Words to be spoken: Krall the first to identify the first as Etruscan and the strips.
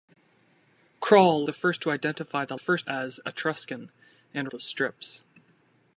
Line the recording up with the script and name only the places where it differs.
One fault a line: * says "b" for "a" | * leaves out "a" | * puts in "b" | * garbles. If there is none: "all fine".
all fine